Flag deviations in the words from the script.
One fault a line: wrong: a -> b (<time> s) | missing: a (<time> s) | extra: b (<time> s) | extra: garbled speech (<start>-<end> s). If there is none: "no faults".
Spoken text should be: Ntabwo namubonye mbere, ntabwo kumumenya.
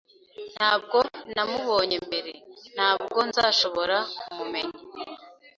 extra: nzashobora (3.3 s)